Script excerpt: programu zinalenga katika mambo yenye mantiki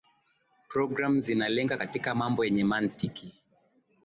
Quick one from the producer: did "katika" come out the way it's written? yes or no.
yes